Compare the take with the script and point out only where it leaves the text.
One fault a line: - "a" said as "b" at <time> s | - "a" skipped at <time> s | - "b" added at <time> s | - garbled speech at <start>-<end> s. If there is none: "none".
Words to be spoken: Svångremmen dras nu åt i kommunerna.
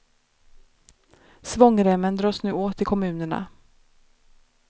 none